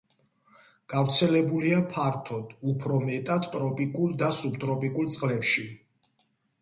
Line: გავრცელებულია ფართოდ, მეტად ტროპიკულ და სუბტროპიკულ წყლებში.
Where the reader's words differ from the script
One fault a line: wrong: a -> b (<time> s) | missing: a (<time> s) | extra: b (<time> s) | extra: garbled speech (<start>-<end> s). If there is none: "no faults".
extra: უფრო (2.7 s)